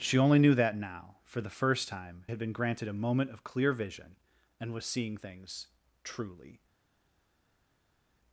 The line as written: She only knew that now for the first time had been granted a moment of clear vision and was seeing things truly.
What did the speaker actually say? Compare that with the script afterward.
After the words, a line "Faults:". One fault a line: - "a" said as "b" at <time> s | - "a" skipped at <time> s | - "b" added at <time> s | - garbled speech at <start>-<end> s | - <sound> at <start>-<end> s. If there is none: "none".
She only knew that now for the first time had been granted a moment of clear vision and was seeing things truly.
Faults:
none